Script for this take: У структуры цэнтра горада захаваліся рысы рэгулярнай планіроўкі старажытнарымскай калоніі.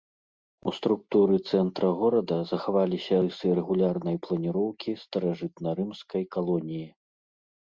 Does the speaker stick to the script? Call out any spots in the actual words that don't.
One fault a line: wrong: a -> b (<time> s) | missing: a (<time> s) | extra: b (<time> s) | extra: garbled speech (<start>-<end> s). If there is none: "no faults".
no faults